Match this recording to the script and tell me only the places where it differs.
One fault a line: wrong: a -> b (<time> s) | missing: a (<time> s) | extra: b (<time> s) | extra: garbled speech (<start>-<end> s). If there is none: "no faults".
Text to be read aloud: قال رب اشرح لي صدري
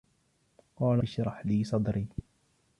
missing: رب (1.0 s)